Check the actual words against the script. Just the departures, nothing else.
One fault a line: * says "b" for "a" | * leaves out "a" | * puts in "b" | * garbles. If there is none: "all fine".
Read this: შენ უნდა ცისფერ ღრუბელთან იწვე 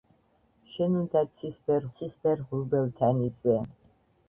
* puts in "ცისფერ"